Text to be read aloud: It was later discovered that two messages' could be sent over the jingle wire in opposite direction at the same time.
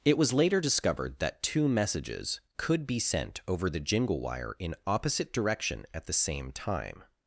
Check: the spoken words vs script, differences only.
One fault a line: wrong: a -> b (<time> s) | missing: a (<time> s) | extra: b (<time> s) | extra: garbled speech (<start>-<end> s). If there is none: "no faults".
no faults